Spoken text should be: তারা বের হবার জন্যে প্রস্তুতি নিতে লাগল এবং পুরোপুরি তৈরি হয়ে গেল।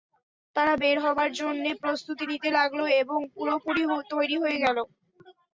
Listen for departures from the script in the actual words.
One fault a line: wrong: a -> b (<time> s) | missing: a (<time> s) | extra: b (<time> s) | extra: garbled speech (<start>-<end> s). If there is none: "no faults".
no faults